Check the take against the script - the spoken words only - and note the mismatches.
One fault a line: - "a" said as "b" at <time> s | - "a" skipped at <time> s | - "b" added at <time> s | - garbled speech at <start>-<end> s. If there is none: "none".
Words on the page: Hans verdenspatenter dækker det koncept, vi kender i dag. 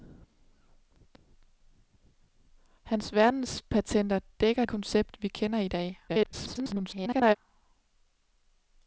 - "det" skipped at 4.7 s
- garbled speech at 6.1-7.4 s